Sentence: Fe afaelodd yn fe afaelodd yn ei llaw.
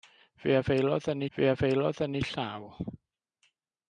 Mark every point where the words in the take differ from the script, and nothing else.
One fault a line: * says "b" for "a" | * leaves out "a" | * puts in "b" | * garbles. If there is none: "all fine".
all fine